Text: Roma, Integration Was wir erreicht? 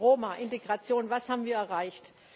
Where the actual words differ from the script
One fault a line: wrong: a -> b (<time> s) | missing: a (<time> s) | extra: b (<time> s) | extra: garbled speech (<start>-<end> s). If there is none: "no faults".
extra: haben (1.3 s)